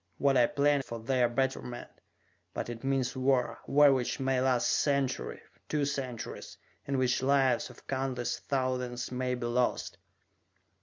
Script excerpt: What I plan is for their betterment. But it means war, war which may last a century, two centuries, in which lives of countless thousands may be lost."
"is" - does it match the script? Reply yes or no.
no